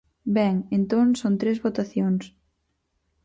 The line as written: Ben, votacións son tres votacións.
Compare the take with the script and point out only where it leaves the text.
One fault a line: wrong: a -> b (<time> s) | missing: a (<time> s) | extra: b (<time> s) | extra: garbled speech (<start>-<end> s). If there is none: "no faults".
wrong: votacións -> entón (0.8 s)